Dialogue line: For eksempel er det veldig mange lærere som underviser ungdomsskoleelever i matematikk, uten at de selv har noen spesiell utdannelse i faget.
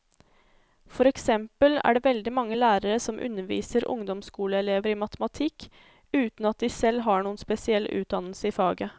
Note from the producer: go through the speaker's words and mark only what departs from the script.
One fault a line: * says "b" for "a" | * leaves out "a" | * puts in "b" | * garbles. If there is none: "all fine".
all fine